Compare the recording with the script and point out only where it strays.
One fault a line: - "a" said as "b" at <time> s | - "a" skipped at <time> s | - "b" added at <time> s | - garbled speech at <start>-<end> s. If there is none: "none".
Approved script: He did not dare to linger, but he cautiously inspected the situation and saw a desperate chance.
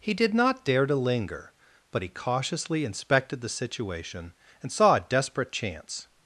none